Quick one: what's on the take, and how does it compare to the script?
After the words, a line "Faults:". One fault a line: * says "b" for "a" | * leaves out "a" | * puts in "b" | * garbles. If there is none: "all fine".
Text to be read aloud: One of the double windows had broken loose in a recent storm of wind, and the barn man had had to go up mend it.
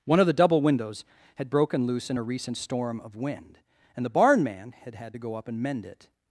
One of the double windows had broken loose in a recent storm of wind, and the barn man had had to go up and mend it.
Faults:
* puts in "and"